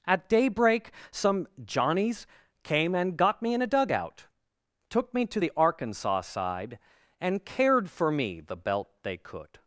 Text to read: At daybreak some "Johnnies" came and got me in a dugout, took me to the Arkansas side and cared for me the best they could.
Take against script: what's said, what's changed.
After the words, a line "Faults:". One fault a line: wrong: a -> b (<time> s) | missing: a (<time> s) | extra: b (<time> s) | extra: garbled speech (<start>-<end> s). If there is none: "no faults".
At daybreak some "Johnnies" came and got me in a dugout, took me to the Arkansas side and cared for me the belt they could.
Faults:
wrong: best -> belt (8.6 s)